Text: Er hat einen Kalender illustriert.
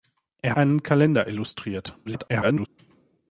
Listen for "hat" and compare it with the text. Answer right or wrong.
wrong